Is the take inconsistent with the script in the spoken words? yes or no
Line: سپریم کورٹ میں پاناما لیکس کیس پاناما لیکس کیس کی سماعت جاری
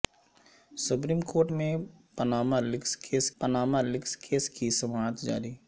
no